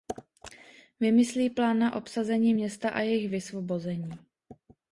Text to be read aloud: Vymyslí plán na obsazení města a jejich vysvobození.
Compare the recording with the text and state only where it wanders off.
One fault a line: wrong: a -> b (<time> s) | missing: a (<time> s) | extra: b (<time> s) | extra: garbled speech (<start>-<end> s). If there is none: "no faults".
no faults